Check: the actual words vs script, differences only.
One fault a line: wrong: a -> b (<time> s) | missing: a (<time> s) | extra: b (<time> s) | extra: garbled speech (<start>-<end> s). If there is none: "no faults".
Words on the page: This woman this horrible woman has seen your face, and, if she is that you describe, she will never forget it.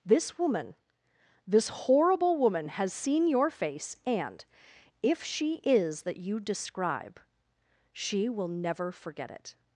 no faults